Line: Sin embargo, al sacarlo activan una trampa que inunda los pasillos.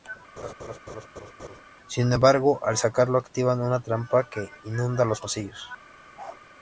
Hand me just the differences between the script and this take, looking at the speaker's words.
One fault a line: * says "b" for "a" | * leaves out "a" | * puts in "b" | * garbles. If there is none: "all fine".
all fine